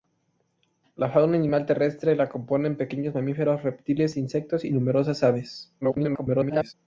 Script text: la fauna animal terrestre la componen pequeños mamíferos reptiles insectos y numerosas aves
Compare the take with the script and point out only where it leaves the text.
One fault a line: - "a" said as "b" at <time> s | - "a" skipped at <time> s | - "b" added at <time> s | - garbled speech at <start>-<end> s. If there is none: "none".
- garbled speech at 5.8-6.7 s